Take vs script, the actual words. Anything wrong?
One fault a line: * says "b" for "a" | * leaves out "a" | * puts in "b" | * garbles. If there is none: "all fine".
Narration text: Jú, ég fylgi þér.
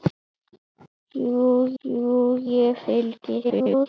* puts in "jú"
* garbles